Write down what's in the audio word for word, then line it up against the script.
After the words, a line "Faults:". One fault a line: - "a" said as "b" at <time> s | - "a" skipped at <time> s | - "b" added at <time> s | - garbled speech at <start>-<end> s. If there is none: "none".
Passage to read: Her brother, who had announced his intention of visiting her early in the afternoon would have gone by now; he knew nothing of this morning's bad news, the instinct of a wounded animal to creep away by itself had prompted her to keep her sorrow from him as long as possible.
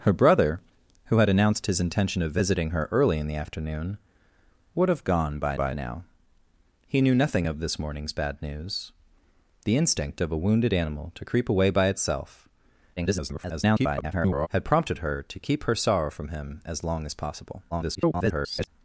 Her brother, who had announced his intention of visiting her early in the afternoon would have gone by by now; he knew nothing of this morning's bad news, the instinct of a wounded animal to creep away by itself [garbled] had prompted her to keep her sorrow from him as long as possible. [garbled]
Faults:
- "by" added at 5.5 s
- garbled speech at 13.0-14.5 s
- garbled speech at 17.7-18.7 s